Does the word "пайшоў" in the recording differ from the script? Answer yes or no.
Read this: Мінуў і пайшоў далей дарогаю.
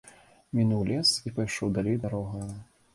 no